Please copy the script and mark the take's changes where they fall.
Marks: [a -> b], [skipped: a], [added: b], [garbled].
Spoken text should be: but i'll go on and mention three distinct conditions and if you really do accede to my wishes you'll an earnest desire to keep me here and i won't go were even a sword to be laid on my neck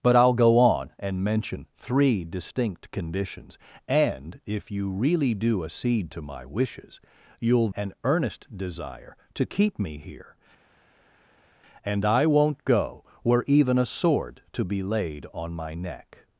but i'll go on and mention three distinct conditions and if you really do accede to my wishes you'll an earnest desire to keep me here and i won't go were even a sword to be laid on my neck